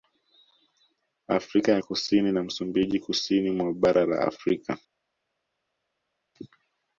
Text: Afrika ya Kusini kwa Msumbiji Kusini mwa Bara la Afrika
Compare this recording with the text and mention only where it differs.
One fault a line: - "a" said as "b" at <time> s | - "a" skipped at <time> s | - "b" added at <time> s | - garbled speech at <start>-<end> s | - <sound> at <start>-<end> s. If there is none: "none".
- "kwa" said as "na" at 2.3 s